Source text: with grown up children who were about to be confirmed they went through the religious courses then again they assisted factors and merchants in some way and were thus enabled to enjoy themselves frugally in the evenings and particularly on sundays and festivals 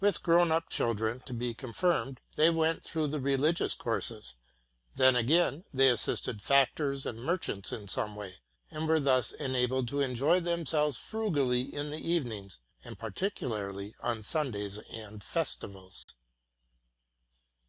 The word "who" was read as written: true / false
false